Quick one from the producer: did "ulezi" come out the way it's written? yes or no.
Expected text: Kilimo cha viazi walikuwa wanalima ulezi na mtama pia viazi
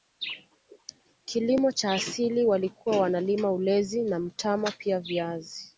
yes